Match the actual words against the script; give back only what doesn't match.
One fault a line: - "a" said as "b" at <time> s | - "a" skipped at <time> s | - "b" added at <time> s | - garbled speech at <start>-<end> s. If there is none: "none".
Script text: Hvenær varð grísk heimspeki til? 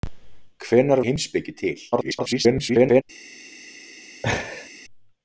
- "varð grísk" skipped at 1.0 s
- garbled speech at 1.9-3.0 s